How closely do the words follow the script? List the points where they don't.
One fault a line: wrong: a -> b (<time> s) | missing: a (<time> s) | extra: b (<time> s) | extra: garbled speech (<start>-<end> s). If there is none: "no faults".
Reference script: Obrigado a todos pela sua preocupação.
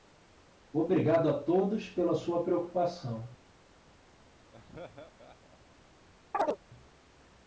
no faults